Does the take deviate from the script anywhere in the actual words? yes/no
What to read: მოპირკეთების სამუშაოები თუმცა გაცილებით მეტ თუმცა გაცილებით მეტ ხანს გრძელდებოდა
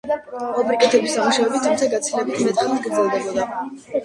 yes